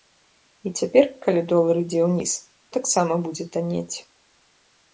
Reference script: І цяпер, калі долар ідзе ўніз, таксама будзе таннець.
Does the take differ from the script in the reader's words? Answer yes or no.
no